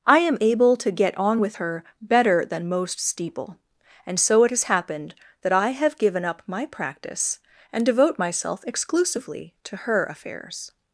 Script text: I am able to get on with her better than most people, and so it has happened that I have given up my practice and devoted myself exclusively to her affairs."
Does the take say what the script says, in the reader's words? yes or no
no